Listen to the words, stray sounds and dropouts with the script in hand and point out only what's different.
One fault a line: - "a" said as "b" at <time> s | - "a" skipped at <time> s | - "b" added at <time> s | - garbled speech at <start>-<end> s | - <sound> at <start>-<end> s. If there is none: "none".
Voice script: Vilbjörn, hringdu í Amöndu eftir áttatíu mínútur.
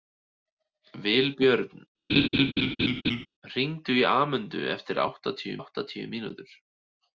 - laugh at 2.1-3.3 s
- "áttatíu" added at 5.6 s